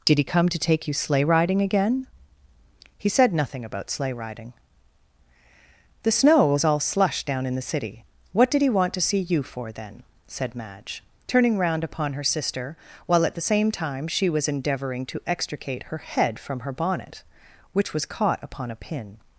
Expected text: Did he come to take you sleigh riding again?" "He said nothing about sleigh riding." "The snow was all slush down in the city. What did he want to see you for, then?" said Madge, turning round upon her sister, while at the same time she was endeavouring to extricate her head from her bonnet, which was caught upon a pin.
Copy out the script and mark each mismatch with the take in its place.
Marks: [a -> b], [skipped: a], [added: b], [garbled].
Did he come to take you sleigh riding again?" "He said nothing about sleigh riding." "The snow was all slush down in the city. What did he want to see you for, then?" said Madge, turning round upon her sister, while at the same time she was endeavouring to extricate her head from her bonnet, which was caught upon a pin.